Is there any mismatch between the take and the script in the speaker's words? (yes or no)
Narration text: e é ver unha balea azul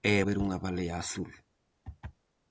no